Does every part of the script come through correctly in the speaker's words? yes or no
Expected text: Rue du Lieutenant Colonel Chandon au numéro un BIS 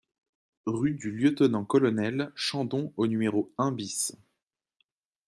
yes